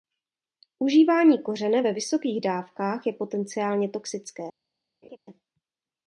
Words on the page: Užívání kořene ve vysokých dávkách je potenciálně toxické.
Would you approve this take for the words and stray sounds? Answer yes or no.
no